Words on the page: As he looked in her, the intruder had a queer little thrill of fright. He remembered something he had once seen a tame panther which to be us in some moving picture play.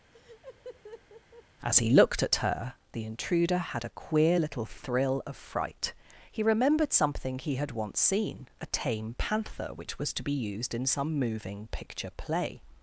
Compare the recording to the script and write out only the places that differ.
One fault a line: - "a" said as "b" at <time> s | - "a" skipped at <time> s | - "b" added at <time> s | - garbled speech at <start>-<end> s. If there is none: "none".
- "in" said as "at" at 2.2 s
- "was" added at 10.0 s
- "us" said as "used" at 10.3 s